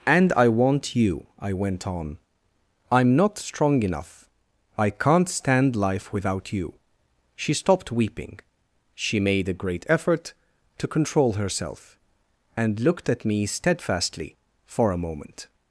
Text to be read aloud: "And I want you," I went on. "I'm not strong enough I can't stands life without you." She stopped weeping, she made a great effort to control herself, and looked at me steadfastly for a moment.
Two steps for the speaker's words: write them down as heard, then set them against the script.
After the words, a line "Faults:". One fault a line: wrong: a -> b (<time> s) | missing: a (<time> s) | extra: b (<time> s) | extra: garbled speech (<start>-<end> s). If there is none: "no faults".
"And I want you," I went on. "I'm not strong enough I can't stand life without you." She stopped weeping, she made a great effort to control herself, and looked at me steadfastly for a moment.
Faults:
wrong: stands -> stand (5.3 s)